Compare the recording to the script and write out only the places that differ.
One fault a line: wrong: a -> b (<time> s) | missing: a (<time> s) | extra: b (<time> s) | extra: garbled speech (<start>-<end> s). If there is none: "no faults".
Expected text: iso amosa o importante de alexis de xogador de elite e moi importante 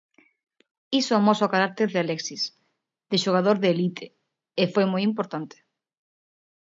wrong: importante -> carácter (1.6 s)
extra: foi (4.7 s)